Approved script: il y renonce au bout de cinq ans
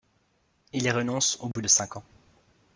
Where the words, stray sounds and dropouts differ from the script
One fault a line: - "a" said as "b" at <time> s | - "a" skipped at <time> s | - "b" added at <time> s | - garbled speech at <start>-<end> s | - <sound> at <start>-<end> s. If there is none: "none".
- dropout at 1.5-1.6 s